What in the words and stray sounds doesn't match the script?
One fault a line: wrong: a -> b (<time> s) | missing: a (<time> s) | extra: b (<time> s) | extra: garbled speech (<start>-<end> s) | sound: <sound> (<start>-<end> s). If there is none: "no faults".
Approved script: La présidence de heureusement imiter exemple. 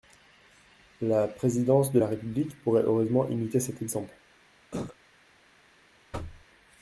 extra: la République pourrait (1.9 s)
extra: cet (3.6 s)
sound: cough (4.7-5.0 s)
sound: thud (6.1-6.5 s)